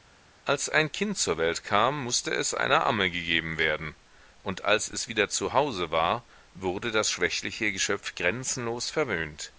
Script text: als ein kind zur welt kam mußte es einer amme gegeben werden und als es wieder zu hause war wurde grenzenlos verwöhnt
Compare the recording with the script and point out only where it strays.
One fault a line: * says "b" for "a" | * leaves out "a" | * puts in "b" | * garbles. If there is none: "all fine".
* puts in "das schwächliche geschöpf"